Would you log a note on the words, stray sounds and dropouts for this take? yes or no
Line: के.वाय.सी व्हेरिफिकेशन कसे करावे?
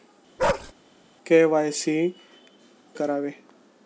yes